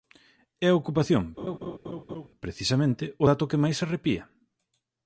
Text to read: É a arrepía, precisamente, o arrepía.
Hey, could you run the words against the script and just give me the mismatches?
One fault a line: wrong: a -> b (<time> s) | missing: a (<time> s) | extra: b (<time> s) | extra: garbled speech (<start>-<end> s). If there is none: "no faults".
wrong: arrepía -> ocupación (0.8 s)
extra: dato que máis (3.3 s)